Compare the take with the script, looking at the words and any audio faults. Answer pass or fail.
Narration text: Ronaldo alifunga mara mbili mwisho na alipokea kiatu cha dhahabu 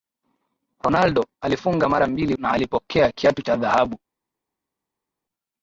fail